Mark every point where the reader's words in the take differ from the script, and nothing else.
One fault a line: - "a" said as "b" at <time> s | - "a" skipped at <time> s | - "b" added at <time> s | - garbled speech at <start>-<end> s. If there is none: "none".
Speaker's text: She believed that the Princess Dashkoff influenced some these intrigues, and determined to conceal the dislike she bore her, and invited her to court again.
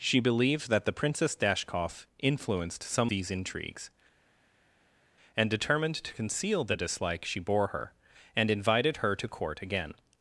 none